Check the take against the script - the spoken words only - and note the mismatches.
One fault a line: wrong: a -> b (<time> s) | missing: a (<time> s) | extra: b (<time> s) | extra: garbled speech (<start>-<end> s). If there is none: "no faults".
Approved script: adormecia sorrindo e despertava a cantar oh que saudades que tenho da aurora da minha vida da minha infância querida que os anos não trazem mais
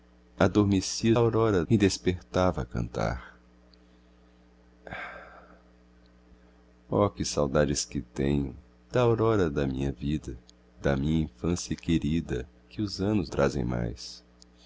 wrong: sorrindo -> aurora (1.1 s)
missing: não (13.3 s)